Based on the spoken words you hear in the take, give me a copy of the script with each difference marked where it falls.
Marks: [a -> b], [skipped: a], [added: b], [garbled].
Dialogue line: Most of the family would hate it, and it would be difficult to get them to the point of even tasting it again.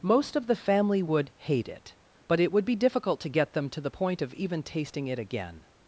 Most of the family would hate it, [and -> but] it would be difficult to get them to the point of even tasting it again.